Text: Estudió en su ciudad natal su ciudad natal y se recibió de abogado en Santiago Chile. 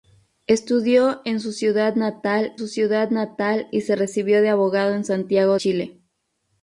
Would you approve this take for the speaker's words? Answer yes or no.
yes